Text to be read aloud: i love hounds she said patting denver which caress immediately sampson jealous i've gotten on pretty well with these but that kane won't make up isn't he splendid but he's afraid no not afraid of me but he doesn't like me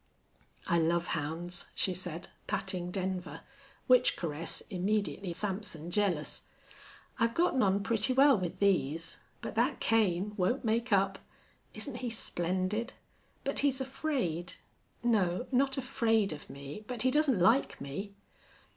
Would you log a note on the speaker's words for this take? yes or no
no